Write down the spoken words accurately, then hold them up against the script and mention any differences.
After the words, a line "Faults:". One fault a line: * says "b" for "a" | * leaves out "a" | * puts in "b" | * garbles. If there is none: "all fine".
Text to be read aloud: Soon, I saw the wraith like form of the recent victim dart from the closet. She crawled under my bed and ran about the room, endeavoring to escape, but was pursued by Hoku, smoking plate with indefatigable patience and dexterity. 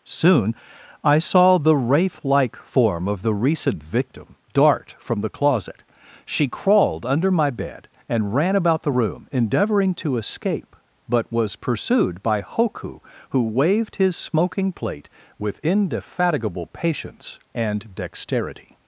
Soon, I saw the wraith like form of the recent victim dart from the closet. She crawled under my bed and ran about the room, endeavoring to escape, but was pursued by Hoku, who waved his smoking plate with indefatigable patience and dexterity.
Faults:
* puts in "who waved his"